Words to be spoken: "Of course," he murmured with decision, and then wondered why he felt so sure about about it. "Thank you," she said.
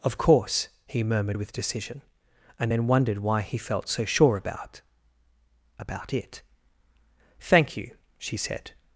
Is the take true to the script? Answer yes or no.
yes